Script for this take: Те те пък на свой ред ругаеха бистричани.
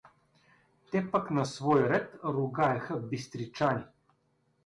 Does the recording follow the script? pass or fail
fail